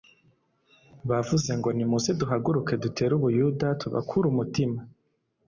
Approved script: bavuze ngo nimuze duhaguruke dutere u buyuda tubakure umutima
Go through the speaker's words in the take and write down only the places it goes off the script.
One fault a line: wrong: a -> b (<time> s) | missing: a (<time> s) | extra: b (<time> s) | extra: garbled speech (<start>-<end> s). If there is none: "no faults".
no faults